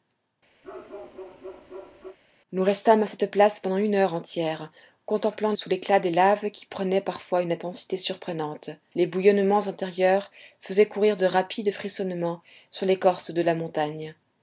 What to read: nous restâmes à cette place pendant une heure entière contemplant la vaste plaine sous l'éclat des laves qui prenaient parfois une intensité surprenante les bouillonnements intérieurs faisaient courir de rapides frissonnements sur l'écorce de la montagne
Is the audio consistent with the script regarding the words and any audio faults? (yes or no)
no